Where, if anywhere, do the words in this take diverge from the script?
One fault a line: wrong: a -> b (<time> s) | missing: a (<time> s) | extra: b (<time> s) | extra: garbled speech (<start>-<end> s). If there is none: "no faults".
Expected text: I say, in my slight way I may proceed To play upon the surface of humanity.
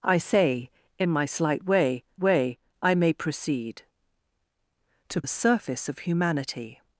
extra: way (2.2 s)
missing: play upon (5.2 s)